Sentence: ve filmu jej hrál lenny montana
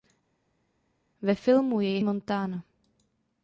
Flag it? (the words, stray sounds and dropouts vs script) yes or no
yes